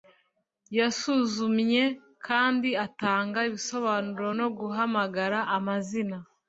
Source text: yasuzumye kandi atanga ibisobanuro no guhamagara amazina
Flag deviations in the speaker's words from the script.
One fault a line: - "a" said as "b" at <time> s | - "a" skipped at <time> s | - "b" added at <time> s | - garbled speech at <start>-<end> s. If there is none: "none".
none